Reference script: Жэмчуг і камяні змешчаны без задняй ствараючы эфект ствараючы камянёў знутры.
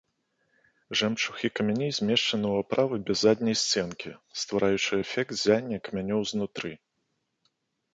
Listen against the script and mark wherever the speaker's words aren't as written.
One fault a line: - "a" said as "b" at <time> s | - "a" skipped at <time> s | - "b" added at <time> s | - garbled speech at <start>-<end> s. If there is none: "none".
- "ў аправы" added at 2.5 s
- "сценкі" added at 3.6 s
- "ствараючы" said as "ззяння" at 5.4 s